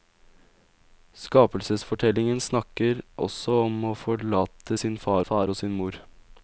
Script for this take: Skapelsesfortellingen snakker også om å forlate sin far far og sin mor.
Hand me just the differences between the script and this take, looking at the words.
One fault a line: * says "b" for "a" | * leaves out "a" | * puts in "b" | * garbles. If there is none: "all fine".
all fine